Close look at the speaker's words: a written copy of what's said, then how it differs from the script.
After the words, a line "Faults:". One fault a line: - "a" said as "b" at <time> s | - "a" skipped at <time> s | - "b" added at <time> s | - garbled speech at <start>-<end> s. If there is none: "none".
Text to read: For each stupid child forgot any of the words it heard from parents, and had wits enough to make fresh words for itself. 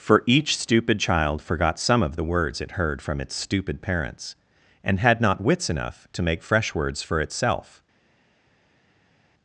For each stupid child forgot some of the words it heard from its stupid parents, and had not wits enough to make fresh words for itself.
Faults:
- "any" said as "some" at 1.8 s
- "its stupid" added at 3.2 s
- "not" added at 5.2 s